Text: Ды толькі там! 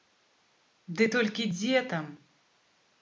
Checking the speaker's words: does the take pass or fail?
fail